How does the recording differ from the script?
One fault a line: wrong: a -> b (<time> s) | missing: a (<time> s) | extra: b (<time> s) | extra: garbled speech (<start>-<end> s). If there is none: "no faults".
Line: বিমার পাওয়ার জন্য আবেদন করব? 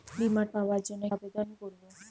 no faults